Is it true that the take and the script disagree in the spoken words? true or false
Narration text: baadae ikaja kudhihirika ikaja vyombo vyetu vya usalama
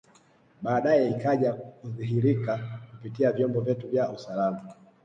true